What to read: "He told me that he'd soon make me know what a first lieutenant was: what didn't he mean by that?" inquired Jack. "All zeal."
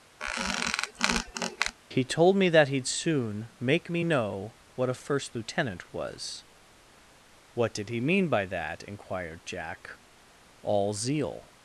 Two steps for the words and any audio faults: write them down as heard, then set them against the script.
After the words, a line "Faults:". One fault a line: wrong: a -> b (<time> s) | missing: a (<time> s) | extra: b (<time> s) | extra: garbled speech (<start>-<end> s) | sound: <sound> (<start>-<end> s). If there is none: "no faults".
"He told me that he'd soon make me know what a first lieutenant was: what did he mean by that?" inquired Jack. "All zeal."
Faults:
sound: squeak (0.2-1.8 s)
wrong: didn't -> did (7.8 s)